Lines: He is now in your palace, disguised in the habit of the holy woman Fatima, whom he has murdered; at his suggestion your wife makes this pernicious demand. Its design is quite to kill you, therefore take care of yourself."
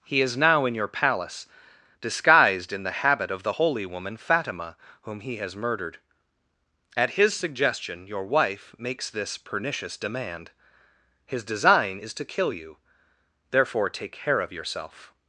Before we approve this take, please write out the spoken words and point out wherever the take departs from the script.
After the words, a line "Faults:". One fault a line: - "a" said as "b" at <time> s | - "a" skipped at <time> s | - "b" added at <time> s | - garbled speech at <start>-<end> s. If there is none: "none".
He is now in your palace, disguised in the habit of the holy woman Fatima, whom he has murdered; at his suggestion your wife makes this pernicious demand. His design is to kill you, therefore take care of yourself."
Faults:
- "Its" said as "His" at 11.3 s
- "quite" skipped at 12.1 s